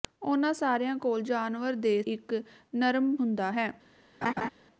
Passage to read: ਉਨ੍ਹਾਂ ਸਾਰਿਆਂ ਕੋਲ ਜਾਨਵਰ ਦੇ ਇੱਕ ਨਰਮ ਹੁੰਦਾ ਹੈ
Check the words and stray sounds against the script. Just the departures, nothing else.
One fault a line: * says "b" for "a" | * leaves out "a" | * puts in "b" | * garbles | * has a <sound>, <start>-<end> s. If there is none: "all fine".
* has a laugh, 4.2-4.5 s